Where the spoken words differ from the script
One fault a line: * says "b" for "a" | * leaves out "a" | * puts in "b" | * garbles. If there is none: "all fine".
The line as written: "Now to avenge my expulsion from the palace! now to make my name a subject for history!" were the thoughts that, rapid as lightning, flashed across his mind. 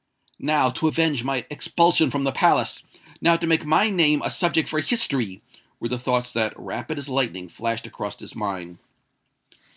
all fine